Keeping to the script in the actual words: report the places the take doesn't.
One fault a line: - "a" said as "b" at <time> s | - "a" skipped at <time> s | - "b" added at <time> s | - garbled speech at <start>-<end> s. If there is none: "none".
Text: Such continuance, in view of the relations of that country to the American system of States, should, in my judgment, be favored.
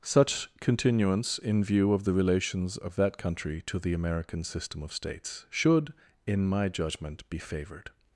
none